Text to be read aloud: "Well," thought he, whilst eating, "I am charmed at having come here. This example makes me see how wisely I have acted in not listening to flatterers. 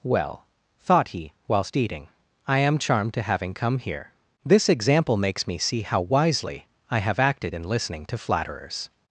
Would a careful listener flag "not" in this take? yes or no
yes